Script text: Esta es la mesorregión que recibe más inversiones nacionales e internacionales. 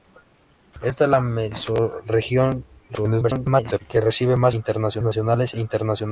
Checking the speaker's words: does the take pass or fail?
fail